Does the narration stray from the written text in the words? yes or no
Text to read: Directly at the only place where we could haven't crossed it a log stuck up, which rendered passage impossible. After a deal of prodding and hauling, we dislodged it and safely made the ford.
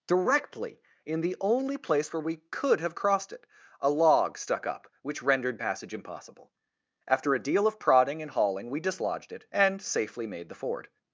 yes